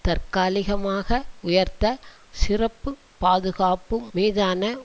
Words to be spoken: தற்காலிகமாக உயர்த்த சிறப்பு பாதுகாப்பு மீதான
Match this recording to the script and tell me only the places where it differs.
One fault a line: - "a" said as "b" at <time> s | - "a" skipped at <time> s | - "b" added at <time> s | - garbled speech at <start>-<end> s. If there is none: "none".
none